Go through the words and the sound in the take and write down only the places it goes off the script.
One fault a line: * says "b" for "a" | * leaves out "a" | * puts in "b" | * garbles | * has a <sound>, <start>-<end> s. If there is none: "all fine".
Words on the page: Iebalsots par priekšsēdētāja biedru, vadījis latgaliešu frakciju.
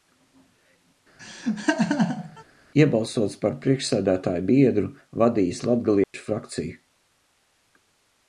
* has a laugh, 1.2-2.4 s
* has a dropout, 6.0-6.1 s